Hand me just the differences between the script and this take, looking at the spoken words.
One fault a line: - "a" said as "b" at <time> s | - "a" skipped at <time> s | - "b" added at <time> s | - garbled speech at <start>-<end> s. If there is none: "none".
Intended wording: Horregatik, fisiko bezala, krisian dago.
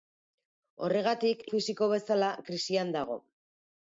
none